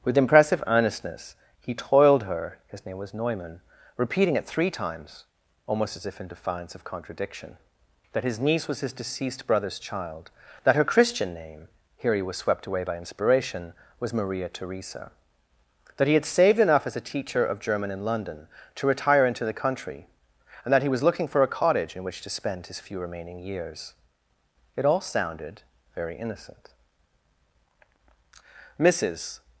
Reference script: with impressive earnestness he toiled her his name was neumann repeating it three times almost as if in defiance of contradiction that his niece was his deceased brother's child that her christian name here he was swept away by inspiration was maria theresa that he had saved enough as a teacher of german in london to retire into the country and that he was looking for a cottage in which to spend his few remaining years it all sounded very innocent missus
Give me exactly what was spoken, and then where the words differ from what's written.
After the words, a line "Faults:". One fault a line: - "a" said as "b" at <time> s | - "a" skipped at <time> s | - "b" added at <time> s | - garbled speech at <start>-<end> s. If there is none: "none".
with impressive earnestness he toiled her his name was neumann repeating it three times almost as if in defiance of contradiction that his niece was his deceased brother's child that her christian name here he was swept away by inspiration was maria theresa that he had saved enough as a teacher of german in london to retire into the country and that he was looking for a cottage in which to spend his few remaining years it all sounded very innocent missus
Faults:
none